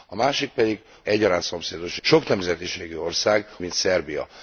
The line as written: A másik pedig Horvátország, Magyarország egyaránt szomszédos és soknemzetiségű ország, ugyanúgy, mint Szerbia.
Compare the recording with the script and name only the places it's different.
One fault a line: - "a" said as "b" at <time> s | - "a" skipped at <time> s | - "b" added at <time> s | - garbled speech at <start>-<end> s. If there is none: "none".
- "Horvátország Magyarország" skipped at 0.8 s
- "és" skipped at 2.0 s
- "ugyanúgy" skipped at 3.5 s